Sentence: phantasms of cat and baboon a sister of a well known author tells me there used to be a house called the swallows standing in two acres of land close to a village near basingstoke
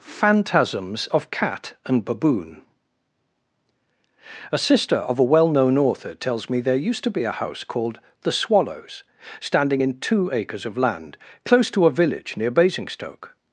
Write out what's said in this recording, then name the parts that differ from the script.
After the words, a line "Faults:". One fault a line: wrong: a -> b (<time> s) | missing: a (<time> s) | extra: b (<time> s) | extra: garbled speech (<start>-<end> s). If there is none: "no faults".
phantasms of cat and baboon a sister of a well known author tells me there used to be a house called the swallows standing in two acres of land close to a village near basingstoke
Faults:
no faults